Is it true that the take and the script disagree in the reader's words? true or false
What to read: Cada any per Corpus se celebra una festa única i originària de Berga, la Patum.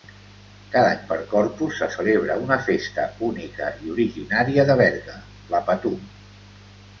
false